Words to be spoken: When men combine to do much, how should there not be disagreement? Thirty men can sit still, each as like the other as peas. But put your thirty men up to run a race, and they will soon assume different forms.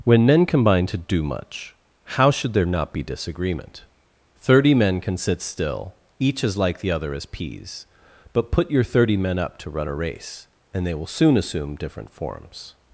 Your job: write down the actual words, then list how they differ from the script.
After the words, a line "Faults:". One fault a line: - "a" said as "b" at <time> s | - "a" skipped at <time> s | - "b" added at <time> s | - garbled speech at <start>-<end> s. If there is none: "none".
When men combine to do much, how should there not be disagreement? Thirty men can sit still, each as like the other as peas. But put your thirty men up to run a race, and they will soon assume different forms.
Faults:
none